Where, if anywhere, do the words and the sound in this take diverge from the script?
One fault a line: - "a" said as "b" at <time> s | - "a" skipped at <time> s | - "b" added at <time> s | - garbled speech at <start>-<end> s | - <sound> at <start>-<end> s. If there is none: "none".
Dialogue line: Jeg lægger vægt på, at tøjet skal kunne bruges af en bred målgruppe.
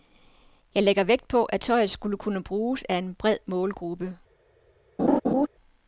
- laugh at 5.0-5.5 s